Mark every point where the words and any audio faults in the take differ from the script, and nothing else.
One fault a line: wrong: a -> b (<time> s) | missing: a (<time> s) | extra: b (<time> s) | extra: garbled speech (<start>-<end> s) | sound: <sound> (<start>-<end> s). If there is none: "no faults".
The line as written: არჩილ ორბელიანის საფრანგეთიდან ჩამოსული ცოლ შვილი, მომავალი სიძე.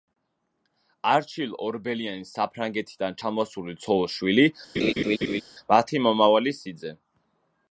sound: laugh (4.8-5.4 s)
extra: მათი (5.7 s)